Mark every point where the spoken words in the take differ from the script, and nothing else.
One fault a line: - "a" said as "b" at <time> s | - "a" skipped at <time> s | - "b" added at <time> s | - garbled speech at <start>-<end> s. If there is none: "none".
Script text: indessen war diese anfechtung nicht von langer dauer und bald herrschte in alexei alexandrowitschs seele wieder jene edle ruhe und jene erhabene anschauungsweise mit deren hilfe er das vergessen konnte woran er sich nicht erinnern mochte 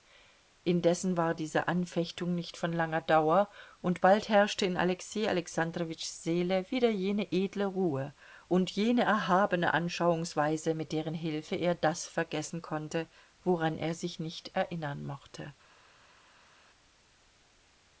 none